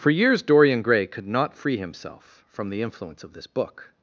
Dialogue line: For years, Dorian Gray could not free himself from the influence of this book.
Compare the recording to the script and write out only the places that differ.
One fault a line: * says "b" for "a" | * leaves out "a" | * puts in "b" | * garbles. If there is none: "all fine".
all fine